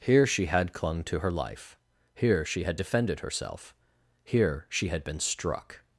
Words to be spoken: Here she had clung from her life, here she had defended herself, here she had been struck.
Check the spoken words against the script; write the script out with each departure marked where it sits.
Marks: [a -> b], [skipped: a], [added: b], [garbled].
Here she had clung [from -> to] her life, here she had defended herself, here she had been struck.